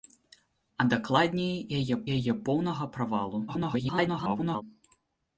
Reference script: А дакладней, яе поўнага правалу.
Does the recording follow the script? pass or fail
fail